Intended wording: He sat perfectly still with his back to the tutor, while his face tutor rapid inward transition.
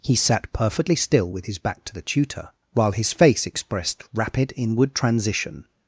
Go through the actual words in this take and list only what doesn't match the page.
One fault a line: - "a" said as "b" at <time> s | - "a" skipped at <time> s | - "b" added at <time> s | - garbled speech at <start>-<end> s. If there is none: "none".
- "tutor" said as "expressed" at 3.4 s